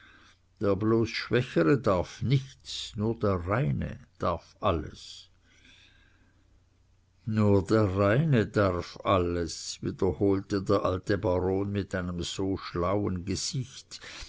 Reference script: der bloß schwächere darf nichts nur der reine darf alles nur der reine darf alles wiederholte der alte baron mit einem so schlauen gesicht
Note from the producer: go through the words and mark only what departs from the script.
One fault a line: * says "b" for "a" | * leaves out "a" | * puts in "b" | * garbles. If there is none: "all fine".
all fine